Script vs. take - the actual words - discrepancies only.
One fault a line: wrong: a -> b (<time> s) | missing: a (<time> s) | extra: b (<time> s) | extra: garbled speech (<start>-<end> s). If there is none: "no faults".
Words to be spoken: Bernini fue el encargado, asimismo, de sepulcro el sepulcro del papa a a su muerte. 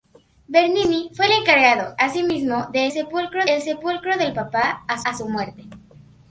no faults